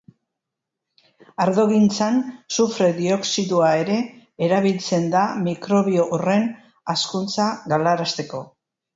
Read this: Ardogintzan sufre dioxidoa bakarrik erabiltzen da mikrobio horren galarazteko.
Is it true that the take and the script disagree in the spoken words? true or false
true